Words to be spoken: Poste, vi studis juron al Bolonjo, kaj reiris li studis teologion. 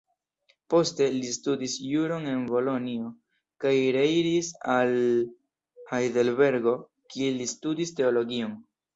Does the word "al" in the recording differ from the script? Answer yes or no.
yes